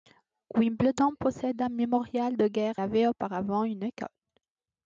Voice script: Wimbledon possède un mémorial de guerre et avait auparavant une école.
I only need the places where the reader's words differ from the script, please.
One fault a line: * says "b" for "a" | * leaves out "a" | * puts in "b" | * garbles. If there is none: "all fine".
* leaves out "et"